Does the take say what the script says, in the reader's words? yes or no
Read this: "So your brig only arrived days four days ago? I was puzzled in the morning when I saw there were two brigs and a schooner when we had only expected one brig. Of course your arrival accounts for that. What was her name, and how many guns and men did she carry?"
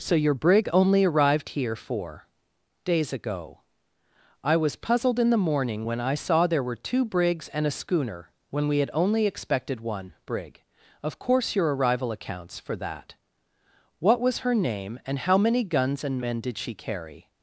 no